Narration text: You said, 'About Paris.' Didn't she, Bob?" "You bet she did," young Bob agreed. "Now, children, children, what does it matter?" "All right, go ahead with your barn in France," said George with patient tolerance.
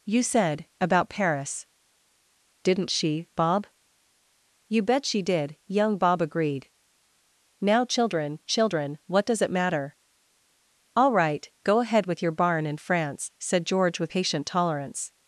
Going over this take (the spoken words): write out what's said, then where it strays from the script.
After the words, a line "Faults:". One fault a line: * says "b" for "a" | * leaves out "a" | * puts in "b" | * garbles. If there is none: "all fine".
You said, 'About Paris.' Didn't she, Bob?" "You bet she did," young Bob agreed. "Now, children, children, what does it matter?" "All right, go ahead with your barn in France," said George with patient tolerance.
Faults:
all fine